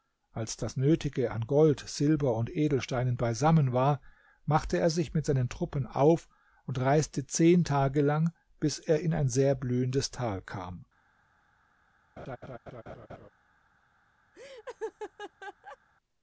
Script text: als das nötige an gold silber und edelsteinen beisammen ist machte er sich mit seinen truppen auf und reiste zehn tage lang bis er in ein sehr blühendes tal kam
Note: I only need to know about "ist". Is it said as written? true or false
false